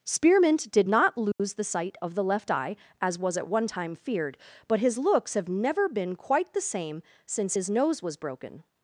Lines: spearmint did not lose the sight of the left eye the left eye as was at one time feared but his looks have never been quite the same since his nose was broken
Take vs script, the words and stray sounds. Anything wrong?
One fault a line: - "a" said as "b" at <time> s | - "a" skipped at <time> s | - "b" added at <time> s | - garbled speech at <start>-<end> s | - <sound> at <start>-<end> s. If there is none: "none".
- dropout at 1.3-1.4 s
- "the left eye" skipped at 2.8 s